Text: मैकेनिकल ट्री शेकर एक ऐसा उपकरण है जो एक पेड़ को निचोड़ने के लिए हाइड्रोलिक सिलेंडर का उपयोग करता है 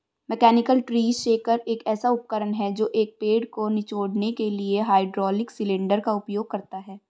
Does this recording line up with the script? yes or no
yes